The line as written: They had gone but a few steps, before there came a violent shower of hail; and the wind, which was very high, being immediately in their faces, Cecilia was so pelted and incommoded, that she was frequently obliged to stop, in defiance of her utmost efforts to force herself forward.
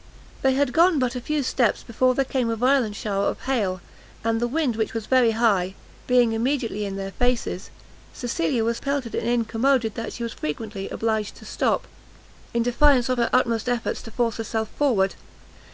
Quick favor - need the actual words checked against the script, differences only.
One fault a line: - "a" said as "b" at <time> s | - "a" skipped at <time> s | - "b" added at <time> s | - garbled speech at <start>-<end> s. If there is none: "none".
- "so" skipped at 8.8 s